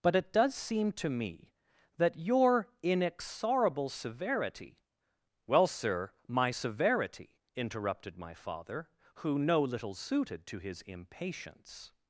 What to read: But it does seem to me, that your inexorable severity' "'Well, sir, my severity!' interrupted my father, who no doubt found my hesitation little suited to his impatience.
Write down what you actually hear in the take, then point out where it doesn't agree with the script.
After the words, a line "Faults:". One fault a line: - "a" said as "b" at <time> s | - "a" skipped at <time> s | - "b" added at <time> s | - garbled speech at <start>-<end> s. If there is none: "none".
But it does seem to me, that your inexorable severity' "'Well, sir, my severity!' interrupted my father, who no little suited to his impatience.
Faults:
- "doubt found my hesitation" skipped at 9.6 s